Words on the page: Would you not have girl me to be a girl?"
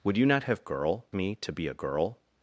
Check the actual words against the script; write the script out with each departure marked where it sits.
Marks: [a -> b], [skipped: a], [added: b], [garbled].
Would you not have girl me to be a girl?"